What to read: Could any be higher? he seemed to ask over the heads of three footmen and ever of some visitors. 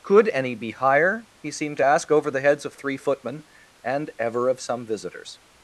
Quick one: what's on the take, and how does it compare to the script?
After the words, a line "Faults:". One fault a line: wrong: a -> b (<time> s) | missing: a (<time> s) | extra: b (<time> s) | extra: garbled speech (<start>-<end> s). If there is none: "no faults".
Could any be higher? he seemed to ask over the heads of three footmen and ever of some visitors.
Faults:
no faults